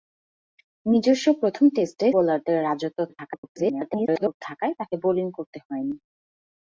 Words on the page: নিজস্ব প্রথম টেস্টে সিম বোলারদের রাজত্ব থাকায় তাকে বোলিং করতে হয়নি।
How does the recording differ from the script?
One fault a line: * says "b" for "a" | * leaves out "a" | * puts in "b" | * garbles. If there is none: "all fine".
* leaves out "সিম"
* garbles